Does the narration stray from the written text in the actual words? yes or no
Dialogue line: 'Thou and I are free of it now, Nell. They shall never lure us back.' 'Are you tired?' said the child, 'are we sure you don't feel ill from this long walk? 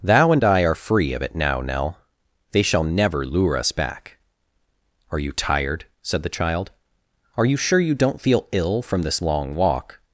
yes